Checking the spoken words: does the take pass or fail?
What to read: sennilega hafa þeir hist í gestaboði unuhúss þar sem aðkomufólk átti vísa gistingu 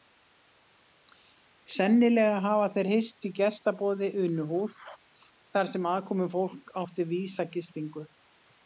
pass